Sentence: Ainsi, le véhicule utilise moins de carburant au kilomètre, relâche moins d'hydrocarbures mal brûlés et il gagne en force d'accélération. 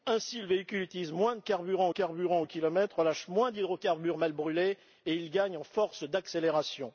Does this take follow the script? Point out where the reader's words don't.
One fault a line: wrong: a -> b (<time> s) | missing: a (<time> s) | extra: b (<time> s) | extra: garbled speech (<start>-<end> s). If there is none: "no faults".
extra: carburant (1.9 s)